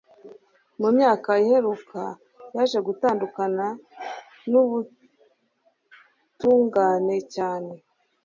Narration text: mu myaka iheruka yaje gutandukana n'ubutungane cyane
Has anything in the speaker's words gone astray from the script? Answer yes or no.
no